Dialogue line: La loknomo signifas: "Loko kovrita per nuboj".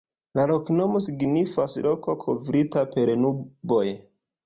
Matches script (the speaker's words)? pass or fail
pass